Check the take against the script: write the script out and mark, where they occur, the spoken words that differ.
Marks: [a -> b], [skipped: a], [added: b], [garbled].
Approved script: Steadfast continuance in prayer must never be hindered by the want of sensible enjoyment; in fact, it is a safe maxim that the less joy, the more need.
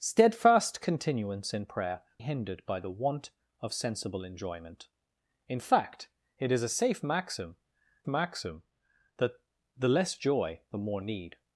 Steadfast continuance in prayer [skipped: must never be] hindered by the want of sensible enjoyment; in fact, it is a safe maxim [added: maxim] that the less joy, the more need.